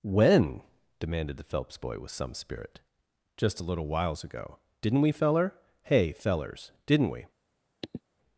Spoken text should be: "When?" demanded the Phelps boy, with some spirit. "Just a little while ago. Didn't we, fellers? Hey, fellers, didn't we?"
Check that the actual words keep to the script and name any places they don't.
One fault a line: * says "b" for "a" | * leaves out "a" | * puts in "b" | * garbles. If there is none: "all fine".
* says "whiles" for "while"
* says "feller" for "fellers"